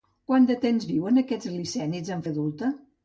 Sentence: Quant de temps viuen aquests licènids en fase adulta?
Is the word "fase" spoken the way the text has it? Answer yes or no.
no